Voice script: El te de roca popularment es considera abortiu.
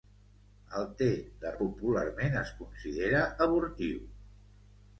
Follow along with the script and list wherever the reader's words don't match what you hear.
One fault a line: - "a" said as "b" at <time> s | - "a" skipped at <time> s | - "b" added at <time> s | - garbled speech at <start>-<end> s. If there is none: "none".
- "roca" skipped at 1.5 s